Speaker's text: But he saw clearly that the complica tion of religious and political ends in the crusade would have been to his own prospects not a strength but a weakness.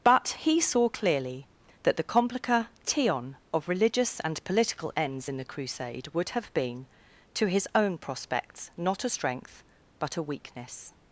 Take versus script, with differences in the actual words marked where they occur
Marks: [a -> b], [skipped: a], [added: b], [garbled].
But he saw clearly that the complica tion of religious and political ends in the crusade would have been to his own prospects not a strength but a weakness.